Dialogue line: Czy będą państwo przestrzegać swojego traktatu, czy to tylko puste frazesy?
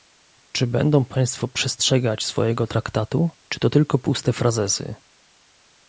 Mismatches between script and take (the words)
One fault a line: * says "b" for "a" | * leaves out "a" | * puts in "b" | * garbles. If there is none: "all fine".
all fine